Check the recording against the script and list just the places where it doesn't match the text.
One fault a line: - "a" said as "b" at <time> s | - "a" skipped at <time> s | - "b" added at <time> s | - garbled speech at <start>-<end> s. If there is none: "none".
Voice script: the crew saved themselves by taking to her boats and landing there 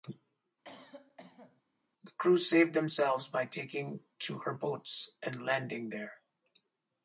none